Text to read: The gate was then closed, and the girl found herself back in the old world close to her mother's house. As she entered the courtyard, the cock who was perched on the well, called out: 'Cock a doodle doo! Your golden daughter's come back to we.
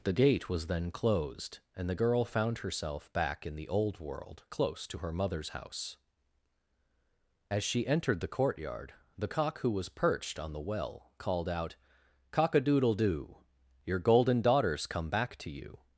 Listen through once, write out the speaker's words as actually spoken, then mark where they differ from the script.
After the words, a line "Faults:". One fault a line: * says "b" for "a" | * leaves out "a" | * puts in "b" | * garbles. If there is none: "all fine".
The gate was then closed, and the girl found herself back in the old world close to her mother's house. As she entered the courtyard, the cock who was perched on the well, called out: 'Cock a doodle doo! Your golden daughter's come back to you.
Faults:
* says "you" for "we"